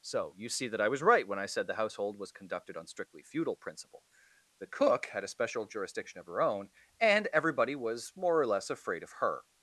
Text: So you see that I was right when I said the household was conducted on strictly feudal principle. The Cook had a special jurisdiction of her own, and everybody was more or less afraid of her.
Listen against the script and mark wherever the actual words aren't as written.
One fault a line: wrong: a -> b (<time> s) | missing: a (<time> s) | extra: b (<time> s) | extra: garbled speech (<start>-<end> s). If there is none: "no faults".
no faults